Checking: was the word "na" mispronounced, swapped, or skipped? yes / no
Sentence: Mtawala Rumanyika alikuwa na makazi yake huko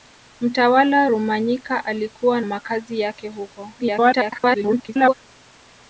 yes